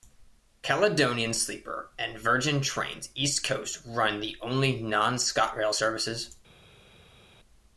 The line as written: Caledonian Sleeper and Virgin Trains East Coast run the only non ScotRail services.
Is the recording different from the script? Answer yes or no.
no